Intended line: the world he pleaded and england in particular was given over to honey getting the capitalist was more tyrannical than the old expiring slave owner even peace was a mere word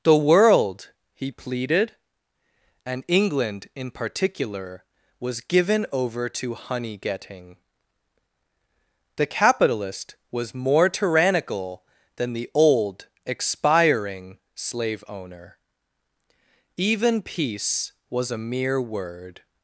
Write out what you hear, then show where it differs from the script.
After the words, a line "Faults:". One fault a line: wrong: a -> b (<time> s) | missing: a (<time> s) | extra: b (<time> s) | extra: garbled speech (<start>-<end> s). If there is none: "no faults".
the world he pleaded and england in particular was given over to honey getting the capitalist was more tyrannical than the old expiring slave owner even peace was a mere word
Faults:
no faults